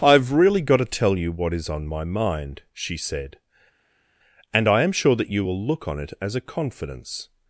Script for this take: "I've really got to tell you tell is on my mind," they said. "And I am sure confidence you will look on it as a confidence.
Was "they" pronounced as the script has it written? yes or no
no